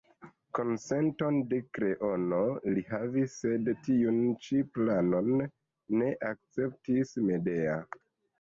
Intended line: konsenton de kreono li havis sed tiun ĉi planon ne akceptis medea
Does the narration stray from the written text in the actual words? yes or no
no